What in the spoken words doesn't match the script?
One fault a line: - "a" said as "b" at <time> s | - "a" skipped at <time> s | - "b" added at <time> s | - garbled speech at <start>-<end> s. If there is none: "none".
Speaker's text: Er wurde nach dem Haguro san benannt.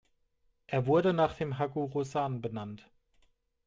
none